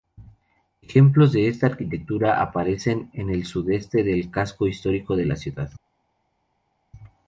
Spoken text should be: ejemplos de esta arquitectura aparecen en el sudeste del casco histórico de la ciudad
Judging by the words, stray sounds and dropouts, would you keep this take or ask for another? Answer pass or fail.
pass